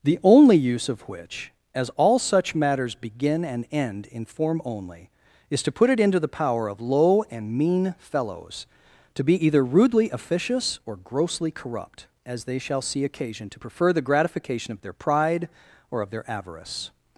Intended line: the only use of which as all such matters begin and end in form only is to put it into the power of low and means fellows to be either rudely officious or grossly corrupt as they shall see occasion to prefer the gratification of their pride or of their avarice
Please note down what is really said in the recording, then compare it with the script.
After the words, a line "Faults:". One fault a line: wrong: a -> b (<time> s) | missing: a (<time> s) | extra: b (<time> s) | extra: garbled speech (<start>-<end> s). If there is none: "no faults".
the only use of which as all such matters begin and end in form only is to put it into the power of low and mean fellows to be either rudely officious or grossly corrupt as they shall see occasion to prefer the gratification of their pride or of their avarice
Faults:
wrong: means -> mean (7.5 s)